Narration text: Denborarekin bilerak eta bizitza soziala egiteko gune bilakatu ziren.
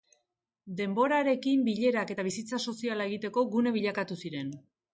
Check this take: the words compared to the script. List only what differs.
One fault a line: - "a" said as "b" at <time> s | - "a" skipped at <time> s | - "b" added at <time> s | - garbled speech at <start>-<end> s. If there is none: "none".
none